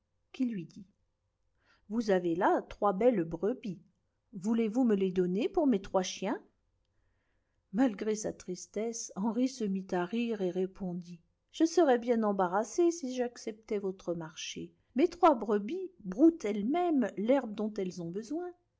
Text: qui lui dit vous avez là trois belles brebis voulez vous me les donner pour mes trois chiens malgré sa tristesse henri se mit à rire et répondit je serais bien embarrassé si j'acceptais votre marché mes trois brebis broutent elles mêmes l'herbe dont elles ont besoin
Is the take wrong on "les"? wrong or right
right